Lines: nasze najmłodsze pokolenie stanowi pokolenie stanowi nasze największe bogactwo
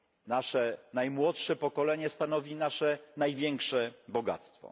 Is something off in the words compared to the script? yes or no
yes